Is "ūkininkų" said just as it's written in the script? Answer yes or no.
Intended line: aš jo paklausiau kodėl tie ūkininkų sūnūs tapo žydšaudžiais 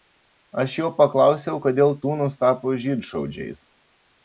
no